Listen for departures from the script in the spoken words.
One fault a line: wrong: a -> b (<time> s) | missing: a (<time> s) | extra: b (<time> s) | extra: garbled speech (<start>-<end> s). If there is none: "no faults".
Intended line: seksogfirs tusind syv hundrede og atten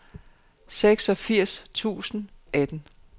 missing: syv hundrede og (2.3 s)